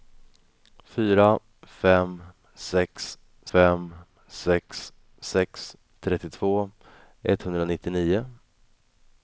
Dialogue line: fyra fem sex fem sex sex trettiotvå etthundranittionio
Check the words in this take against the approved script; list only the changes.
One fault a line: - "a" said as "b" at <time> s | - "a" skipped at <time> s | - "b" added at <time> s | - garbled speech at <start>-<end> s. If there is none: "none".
none